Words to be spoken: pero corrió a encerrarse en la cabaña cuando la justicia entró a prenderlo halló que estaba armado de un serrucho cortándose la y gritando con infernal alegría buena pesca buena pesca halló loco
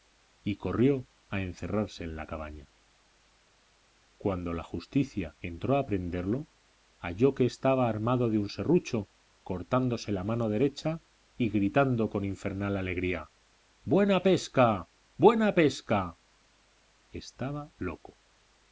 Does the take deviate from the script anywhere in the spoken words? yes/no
yes